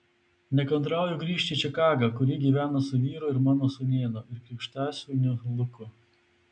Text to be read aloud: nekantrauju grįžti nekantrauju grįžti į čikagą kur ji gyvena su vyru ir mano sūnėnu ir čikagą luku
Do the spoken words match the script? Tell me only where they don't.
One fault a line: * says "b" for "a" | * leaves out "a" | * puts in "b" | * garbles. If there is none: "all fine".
* leaves out "nekantrauju grįžti"
* says "krikštasūniu" for "čikagą"